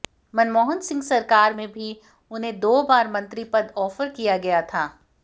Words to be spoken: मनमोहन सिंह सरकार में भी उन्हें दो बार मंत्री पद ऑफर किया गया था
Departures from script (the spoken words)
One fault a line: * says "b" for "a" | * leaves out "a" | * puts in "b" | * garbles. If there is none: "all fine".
all fine